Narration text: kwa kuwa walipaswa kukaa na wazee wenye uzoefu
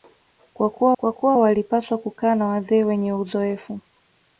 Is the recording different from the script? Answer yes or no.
yes